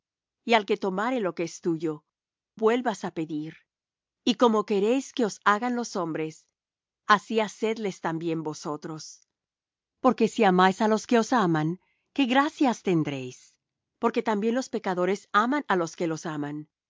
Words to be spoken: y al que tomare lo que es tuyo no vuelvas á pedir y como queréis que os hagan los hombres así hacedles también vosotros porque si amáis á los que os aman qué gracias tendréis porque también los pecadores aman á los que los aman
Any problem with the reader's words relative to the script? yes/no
yes